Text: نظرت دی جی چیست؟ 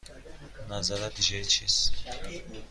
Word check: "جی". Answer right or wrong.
right